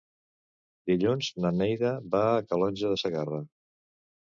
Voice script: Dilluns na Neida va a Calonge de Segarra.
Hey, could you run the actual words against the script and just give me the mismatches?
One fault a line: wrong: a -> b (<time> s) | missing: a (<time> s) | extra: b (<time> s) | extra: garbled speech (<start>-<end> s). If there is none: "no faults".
no faults